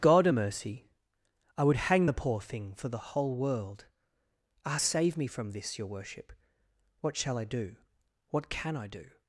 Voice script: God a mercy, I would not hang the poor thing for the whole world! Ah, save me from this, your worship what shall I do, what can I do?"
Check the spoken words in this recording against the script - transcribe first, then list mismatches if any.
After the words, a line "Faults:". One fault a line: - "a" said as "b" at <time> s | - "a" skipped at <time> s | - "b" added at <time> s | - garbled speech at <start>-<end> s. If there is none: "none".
God a mercy, I would hang the poor thing for the whole world! Ah, save me from this, your worship what shall I do, what can I do?"
Faults:
- "not" skipped at 1.7 s